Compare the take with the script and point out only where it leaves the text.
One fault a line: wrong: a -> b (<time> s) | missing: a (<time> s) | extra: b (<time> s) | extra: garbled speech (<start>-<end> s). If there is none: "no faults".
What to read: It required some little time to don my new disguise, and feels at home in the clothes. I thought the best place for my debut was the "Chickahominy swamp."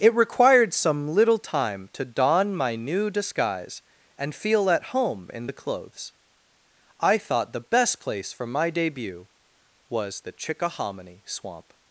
wrong: feels -> feel (4.3 s)